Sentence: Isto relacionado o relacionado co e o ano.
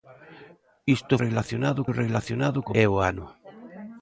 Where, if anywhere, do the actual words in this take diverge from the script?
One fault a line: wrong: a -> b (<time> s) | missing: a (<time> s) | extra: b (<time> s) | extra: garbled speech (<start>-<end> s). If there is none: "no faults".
no faults